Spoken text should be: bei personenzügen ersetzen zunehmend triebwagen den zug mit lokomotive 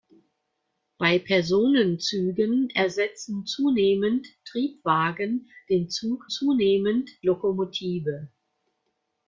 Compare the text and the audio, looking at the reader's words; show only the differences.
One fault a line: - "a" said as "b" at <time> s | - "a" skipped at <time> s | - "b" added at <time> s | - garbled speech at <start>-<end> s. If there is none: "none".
- "mit" said as "zunehmend" at 6.3 s